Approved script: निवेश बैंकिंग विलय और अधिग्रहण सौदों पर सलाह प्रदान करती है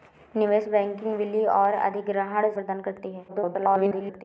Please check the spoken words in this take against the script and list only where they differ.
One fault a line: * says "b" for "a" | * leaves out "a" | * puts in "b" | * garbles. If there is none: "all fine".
* leaves out "सौदों पर सलाह"
* garbles